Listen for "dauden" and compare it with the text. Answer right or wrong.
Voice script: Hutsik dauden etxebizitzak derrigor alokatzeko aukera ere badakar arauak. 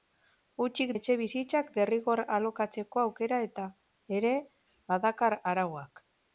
wrong